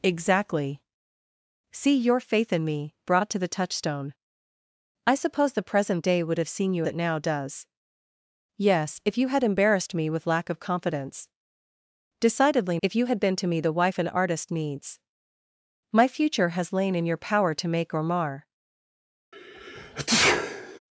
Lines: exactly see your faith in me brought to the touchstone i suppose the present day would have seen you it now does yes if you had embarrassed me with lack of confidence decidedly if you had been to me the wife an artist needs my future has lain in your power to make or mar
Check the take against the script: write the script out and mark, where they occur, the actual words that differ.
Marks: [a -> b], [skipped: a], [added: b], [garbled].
exactly see your faith in me brought to the touchstone i suppose the present day would have seen you it now does yes if you had embarrassed me with lack of confidence decidedly if you had been to me the wife an artist needs my future has lain in your power to make or mar